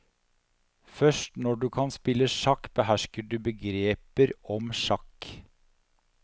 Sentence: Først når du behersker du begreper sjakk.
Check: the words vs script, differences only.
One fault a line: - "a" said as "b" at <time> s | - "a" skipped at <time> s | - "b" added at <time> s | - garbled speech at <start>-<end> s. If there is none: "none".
- "kan spille sjakk" added at 1.8 s
- "om" added at 4.6 s